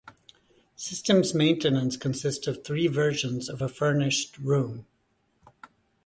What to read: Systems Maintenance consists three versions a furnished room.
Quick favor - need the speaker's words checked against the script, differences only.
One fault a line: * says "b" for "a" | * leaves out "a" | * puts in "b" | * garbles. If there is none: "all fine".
* puts in "of"
* puts in "of"